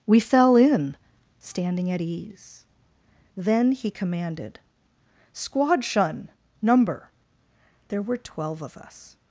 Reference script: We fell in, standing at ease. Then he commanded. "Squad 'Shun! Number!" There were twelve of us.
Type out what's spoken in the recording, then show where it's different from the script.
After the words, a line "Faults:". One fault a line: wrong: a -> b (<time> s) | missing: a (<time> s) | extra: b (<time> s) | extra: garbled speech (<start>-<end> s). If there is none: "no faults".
We fell in, standing at ease. Then he commanded. "Squad 'Shun! Number!" There were twelve of us.
Faults:
no faults